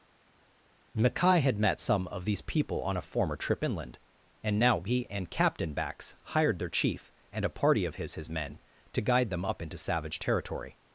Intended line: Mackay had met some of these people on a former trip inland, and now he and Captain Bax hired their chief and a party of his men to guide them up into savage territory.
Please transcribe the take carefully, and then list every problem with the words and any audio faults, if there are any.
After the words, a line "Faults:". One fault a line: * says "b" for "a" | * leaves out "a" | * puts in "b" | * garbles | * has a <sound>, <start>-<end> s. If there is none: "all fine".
Mackay had met some of these people on a former trip inland, and now he and Captain Bax hired their chief and a party of his his men to guide them up into savage territory.
Faults:
* puts in "his"